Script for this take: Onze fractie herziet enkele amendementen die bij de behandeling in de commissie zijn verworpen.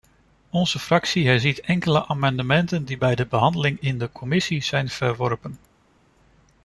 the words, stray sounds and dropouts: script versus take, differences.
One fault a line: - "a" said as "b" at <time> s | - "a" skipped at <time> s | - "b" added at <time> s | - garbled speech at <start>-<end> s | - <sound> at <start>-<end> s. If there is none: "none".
none